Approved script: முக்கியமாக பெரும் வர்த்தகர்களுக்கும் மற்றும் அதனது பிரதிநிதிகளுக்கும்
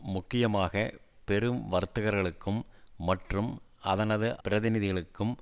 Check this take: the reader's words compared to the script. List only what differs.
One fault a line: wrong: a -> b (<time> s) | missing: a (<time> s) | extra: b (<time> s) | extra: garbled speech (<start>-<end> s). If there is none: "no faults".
no faults